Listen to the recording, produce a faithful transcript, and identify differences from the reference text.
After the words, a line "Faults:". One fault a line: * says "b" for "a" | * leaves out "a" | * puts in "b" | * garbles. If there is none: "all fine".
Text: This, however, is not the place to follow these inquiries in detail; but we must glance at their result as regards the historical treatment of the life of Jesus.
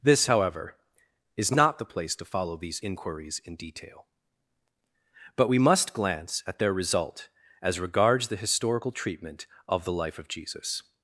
This, however, is not the place to follow these inquiries in detail; but we must glance at their result as regards the historical treatment of the life of Jesus.
Faults:
all fine